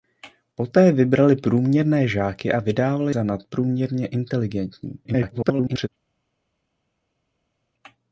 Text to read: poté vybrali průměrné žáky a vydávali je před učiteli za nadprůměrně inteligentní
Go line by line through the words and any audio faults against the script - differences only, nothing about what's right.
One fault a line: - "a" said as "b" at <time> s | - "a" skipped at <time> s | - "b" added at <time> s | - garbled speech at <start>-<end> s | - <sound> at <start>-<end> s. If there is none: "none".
- "je před učiteli" skipped at 3.1 s
- garbled speech at 5.0-5.9 s